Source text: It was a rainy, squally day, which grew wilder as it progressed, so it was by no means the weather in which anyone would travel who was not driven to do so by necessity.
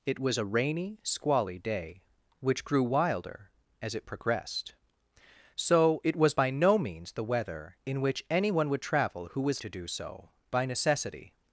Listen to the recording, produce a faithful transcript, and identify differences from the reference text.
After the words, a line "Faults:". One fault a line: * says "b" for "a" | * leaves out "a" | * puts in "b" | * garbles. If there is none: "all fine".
It was a rainy, squally day, which grew wilder as it progressed, so it was by no means the weather in which anyone would travel who was to do so by necessity.
Faults:
* leaves out "not driven"